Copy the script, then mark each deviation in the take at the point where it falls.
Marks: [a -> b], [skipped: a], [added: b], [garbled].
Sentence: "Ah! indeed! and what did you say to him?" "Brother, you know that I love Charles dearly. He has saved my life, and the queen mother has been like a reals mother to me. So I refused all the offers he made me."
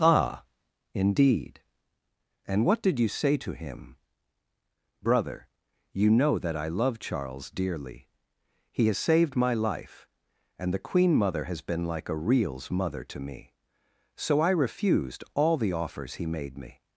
"Ah! indeed! and what did you say to him?" "Brother, you know that I love Charles dearly. He has saved my life, and the queen mother has been like a reals mother to me. So I refused all the offers he made me."